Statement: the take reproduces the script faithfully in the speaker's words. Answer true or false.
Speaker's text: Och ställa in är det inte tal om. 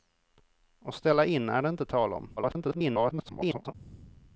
false